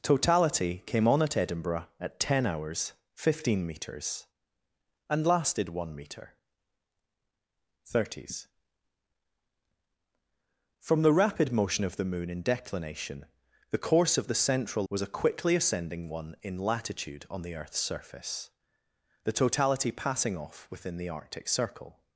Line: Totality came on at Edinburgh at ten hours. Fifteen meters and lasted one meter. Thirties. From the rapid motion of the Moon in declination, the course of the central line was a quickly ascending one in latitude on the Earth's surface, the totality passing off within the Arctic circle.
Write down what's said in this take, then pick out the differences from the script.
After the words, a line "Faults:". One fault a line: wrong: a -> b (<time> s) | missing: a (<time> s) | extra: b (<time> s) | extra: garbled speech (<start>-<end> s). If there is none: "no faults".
Totality came on at Edinburgh at ten hours. Fifteen meters and lasted one meter. Thirties. From the rapid motion of the Moon in declination, the course of the central was a quickly ascending one in latitude on the Earth's surface, the totality passing off within the Arctic circle.
Faults:
missing: line (14.8 s)